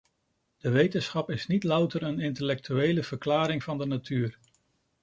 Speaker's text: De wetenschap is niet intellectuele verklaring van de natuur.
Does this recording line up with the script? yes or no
no